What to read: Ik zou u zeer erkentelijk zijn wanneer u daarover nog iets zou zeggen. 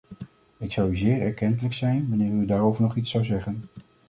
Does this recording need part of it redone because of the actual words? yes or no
no